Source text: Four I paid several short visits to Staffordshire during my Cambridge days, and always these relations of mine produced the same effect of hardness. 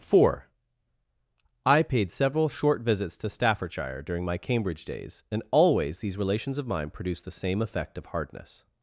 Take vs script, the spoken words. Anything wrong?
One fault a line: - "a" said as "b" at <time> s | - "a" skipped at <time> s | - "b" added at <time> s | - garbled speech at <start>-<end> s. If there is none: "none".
none